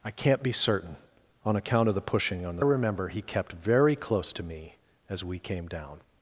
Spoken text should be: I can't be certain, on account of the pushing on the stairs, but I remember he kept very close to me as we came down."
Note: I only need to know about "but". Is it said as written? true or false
false